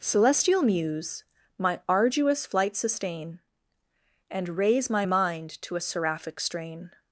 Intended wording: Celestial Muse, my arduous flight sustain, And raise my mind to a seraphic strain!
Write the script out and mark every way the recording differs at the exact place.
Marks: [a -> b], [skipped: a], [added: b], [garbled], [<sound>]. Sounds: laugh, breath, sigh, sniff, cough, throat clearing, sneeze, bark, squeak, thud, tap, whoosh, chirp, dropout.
Celestial Muse, my arduous flight sustain, And raise my mind to a seraphic strain!